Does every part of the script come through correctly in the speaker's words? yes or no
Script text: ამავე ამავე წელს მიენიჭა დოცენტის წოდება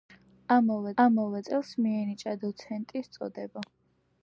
yes